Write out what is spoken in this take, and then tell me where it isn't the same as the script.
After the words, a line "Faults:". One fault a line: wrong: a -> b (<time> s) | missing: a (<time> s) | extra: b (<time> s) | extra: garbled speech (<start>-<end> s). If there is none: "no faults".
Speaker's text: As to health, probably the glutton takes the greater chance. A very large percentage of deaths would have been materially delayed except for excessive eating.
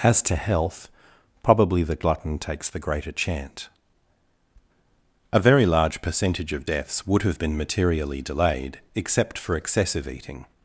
As to health, probably the glutton takes the greater chant. A very large percentage of deaths would have been materially delayed except for excessive eating.
Faults:
wrong: chance -> chant (3.1 s)